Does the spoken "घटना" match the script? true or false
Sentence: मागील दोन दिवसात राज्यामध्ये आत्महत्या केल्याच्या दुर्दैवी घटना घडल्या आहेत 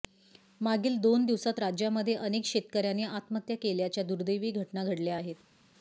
true